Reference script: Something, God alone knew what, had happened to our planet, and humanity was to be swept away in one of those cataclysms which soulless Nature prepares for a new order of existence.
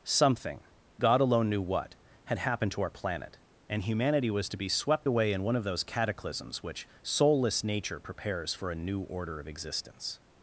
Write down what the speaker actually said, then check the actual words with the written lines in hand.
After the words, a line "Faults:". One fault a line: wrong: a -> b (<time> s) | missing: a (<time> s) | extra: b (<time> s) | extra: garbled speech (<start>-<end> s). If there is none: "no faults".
Something, God alone knew what, had happened to our planet, and humanity was to be swept away in one of those cataclysms which soulless Nature prepares for a new order of existence.
Faults:
no faults